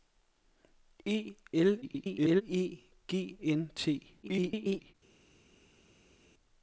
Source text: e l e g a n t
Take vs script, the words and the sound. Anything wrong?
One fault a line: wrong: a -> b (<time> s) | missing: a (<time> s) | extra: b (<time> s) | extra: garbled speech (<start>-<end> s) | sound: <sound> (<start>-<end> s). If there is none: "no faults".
extra: garbled speech (1.8-2.4 s)
missing: a (3.4 s)
extra: garbled speech (4.2-4.9 s)